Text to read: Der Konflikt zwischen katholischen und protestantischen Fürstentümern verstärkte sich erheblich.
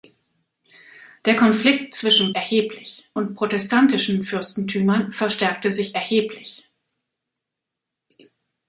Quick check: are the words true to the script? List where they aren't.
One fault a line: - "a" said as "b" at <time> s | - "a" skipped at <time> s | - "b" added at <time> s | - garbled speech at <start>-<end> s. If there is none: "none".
- "katholischen" said as "erheblich" at 2.3 s